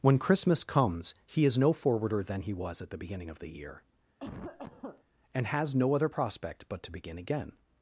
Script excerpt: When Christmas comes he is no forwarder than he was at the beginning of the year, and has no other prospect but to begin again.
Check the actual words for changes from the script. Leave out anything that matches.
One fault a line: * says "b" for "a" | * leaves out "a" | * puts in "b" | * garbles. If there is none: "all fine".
all fine